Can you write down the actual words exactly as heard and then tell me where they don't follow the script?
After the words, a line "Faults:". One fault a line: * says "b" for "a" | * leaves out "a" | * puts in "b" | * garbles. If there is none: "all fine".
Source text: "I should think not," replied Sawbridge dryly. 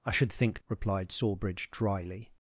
"I should think," replied Sawbridge dryly.
Faults:
* leaves out "not"